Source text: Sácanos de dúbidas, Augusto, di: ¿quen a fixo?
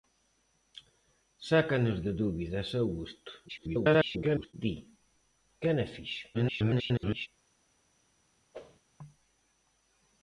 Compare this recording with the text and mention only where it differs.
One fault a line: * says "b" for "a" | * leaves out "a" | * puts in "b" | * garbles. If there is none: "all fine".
* garbles
* garbles